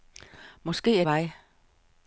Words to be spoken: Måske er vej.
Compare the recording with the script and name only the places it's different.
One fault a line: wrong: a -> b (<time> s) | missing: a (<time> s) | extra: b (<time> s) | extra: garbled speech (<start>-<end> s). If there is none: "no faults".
no faults